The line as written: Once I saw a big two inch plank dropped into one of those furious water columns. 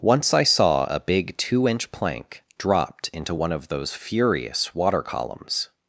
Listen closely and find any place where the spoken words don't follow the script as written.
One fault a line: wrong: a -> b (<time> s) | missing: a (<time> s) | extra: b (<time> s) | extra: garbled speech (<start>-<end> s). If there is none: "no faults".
no faults